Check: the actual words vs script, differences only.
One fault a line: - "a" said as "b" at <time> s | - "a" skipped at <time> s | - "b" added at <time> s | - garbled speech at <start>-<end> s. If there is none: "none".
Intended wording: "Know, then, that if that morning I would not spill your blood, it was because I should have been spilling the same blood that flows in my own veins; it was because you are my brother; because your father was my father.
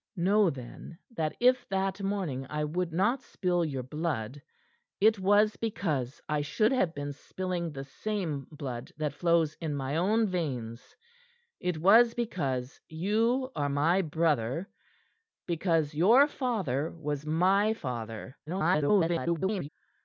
- garbled speech at 18.5-19.7 s